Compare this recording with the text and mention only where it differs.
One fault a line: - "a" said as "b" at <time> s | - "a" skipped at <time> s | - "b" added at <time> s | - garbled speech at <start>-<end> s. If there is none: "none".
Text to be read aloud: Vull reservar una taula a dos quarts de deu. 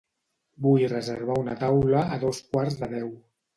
none